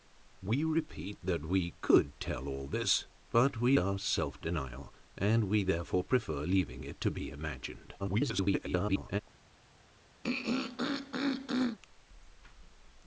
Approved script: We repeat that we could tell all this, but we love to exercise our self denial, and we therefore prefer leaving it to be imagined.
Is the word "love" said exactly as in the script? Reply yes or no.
no